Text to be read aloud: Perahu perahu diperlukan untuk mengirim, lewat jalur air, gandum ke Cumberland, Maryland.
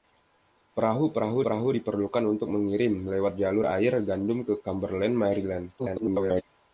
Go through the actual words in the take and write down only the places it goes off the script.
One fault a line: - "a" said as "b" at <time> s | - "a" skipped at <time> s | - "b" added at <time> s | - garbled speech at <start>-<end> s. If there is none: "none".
- "perahu" added at 1.4 s
- garbled speech at 5.8-6.4 s